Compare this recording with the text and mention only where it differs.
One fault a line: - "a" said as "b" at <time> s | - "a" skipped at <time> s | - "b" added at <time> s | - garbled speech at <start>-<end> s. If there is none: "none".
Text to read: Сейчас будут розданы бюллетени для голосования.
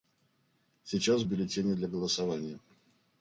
- "будут розданы" skipped at 1.2 s